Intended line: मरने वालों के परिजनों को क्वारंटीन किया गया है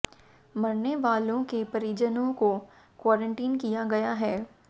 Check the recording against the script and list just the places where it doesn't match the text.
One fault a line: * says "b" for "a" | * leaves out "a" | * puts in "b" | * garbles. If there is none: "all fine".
all fine